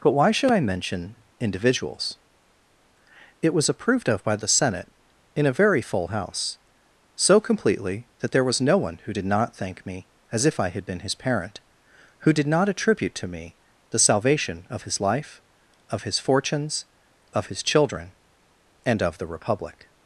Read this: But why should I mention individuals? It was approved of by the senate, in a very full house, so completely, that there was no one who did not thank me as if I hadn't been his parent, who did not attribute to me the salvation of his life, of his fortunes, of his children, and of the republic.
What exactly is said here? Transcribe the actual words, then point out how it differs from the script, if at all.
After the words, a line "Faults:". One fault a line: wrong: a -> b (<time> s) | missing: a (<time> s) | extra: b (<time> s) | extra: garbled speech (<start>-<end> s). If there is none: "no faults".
But why should I mention individuals? It was approved of by the senate, in a very full house, so completely, that there was no one who did not thank me as if I had been his parent, who did not attribute to me the salvation of his life, of his fortunes, of his children, and of the republic.
Faults:
wrong: hadn't -> had (10.7 s)